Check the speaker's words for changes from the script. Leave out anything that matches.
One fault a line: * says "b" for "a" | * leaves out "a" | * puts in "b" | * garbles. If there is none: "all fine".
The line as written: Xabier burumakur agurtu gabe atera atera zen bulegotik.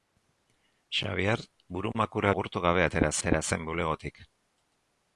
all fine